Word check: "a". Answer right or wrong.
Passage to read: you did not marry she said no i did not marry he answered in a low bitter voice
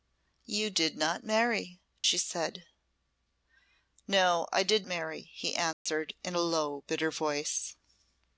right